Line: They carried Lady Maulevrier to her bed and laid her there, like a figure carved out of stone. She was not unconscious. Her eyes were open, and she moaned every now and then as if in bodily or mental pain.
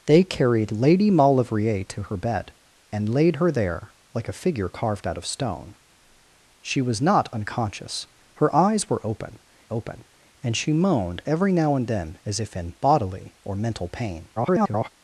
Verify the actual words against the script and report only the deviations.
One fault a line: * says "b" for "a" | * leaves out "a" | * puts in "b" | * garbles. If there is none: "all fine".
* puts in "open"
* garbles